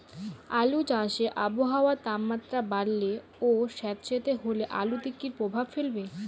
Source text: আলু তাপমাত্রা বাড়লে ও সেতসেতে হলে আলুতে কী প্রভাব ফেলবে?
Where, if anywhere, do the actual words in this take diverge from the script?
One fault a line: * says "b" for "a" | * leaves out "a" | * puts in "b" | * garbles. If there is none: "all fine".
* puts in "চাষে আবহাওয়ার"